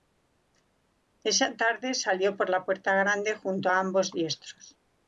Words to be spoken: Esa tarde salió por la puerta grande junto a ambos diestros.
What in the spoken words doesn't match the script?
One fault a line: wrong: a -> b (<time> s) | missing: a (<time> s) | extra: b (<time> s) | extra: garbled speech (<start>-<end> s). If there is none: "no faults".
no faults